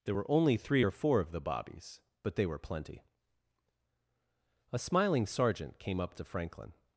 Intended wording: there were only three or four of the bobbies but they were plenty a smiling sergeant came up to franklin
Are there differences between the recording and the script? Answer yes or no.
no